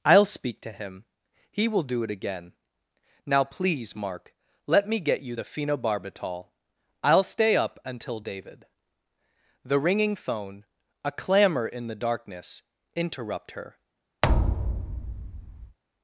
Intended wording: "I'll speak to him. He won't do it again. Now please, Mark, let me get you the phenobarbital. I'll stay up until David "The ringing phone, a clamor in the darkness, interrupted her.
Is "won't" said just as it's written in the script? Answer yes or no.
no